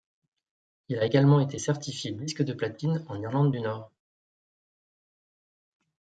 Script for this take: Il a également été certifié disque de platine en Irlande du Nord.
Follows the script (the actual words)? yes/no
yes